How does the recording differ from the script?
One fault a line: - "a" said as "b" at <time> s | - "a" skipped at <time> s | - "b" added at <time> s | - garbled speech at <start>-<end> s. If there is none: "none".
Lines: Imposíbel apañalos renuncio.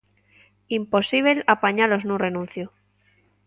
- "nun" added at 2.0 s